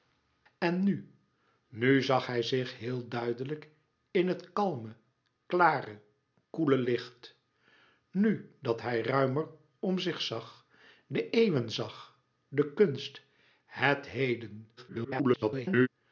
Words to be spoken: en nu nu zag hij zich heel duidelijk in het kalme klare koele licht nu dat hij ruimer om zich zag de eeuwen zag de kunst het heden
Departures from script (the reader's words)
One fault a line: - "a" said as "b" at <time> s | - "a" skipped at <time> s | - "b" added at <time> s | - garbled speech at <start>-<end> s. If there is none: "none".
- garbled speech at 14.8-15.9 s